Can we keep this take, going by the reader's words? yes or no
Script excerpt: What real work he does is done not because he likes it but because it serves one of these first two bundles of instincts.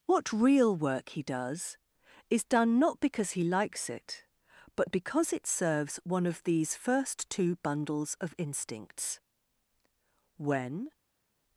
no